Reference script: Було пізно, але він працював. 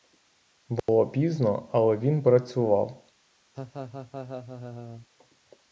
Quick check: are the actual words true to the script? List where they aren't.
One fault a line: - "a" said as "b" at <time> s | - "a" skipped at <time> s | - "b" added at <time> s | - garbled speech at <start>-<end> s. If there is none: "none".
none